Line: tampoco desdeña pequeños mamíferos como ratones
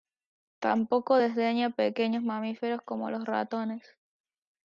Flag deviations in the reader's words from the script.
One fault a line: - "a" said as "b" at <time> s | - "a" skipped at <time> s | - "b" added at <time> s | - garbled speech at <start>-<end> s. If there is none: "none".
- "los" added at 3.1 s